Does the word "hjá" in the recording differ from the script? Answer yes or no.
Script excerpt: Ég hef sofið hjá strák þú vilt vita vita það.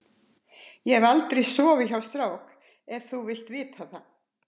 no